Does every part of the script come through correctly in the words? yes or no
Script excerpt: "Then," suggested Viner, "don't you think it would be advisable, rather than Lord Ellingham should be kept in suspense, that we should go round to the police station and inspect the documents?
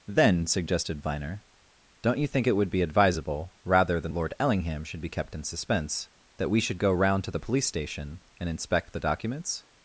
yes